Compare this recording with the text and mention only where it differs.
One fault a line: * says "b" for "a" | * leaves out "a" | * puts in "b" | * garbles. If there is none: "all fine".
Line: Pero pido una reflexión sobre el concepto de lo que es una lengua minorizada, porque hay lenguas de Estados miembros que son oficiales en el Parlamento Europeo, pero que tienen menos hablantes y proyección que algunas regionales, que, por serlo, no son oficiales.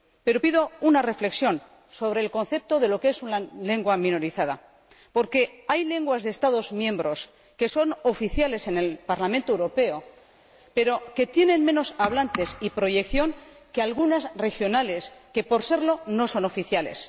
all fine